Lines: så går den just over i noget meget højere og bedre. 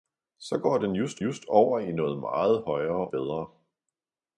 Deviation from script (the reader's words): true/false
true